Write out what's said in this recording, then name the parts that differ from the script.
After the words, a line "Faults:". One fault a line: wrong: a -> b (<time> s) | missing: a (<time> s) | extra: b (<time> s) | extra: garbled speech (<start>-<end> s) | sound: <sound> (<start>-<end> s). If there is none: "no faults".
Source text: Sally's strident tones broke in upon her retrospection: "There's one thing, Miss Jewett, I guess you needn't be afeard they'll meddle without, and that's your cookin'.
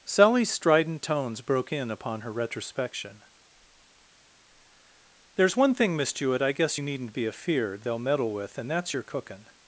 Sally's strident tones broke in upon her retrospection: "There's one thing, Miss Jewett, I guess you needn't be afeard they'll meddle with, and that's your cookin'.
Faults:
wrong: without -> with (8.3 s)